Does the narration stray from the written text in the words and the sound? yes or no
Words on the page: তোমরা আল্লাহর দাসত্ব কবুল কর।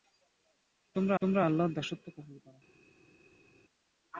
yes